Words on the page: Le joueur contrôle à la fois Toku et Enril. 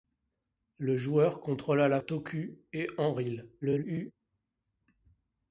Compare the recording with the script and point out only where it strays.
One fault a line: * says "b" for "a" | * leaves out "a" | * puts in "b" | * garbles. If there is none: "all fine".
* leaves out "fois"
* garbles